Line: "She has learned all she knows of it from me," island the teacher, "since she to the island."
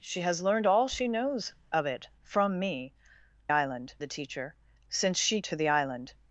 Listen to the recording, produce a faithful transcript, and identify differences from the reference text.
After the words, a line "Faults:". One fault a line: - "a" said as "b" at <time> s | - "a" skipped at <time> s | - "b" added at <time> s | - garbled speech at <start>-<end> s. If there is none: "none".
"She has learned all she knows of it from me," island the teacher, "since she to the island."
Faults:
none